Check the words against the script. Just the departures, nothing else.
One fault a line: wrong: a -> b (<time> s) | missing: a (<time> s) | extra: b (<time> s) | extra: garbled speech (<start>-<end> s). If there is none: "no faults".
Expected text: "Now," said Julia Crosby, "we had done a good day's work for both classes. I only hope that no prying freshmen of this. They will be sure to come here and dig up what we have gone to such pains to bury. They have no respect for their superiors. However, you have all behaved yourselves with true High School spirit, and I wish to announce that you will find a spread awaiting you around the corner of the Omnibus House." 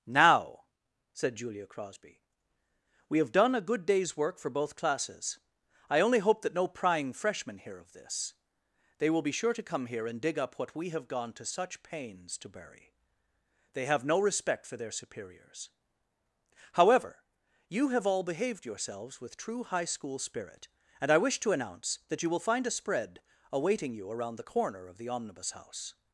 wrong: had -> have (3.2 s)
extra: hear (7.6 s)